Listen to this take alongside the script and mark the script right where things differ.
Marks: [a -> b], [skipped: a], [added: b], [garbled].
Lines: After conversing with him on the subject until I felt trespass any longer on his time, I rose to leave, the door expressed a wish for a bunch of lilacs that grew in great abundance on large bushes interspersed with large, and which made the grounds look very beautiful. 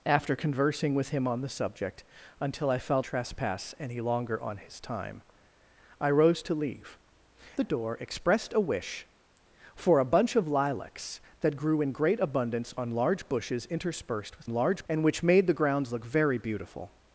After conversing with him on the subject until I felt trespass any longer on his time, I rose to leave, the door expressed a wish for a bunch of lilacs that grew in great abundance on large bushes interspersed with large, and which made the grounds look very beautiful.